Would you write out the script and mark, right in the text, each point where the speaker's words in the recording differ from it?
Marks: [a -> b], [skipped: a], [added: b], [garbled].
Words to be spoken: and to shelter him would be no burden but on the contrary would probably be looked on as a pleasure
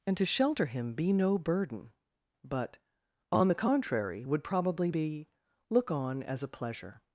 and to shelter him [skipped: would] be no burden but on the contrary would probably be [looked -> look] on as a pleasure